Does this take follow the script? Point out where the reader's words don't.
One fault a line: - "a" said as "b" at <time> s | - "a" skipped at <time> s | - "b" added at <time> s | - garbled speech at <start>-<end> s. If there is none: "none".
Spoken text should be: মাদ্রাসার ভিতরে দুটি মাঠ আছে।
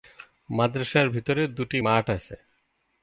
none